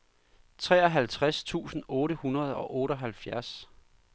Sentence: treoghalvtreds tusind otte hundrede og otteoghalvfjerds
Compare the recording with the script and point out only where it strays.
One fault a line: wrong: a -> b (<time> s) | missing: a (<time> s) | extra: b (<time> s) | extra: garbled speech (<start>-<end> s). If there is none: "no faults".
no faults